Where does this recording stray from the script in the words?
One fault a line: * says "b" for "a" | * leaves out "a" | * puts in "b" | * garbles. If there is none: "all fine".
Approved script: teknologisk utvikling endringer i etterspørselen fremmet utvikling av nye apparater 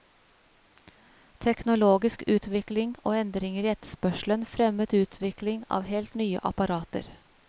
* puts in "og"
* puts in "helt"